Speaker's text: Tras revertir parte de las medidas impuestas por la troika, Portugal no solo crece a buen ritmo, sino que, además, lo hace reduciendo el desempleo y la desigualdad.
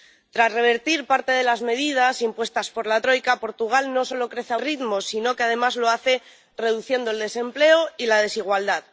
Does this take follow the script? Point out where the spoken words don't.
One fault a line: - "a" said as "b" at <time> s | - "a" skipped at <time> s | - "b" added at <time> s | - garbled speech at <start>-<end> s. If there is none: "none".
- "buen" skipped at 4.6 s